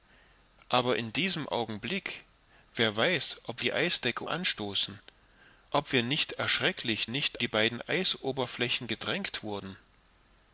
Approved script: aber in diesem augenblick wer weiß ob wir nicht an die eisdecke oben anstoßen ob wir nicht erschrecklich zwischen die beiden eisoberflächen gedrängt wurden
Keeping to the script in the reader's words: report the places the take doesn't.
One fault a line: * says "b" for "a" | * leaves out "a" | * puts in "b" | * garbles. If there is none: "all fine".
* leaves out "wir nicht an"
* leaves out "oben"
* says "nicht" for "zwischen"